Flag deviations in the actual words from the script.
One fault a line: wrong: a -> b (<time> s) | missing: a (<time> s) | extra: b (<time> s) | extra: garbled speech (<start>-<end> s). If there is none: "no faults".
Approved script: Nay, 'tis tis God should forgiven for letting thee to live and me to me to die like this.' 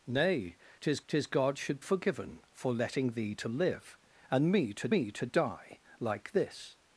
no faults